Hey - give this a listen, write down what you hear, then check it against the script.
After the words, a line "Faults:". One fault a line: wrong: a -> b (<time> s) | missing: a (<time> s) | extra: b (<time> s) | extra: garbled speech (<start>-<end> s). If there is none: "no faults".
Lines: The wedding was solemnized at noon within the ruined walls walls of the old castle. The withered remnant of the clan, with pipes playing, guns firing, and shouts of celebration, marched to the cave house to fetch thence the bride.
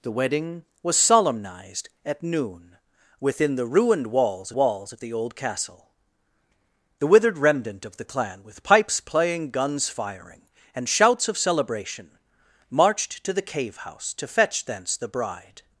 The wedding was solemnized at noon within the ruined walls walls of the old castle. The withered remnant of the clan, with pipes playing, guns firing, and shouts of celebration, marched to the cave house to fetch thence the bride.
Faults:
no faults